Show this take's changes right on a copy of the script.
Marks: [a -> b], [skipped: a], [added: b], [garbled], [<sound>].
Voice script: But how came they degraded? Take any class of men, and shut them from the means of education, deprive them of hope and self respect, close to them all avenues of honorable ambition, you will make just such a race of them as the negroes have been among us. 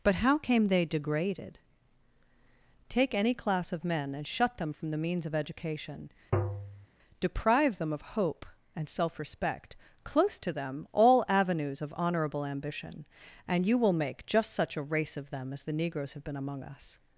But how came they degraded? Take any class of men, and shut them from the means of education, [tap] deprive them of hope and self respect, close to them all avenues of honorable ambition, [added: and] you will make just such a race of them as the negroes have been among us.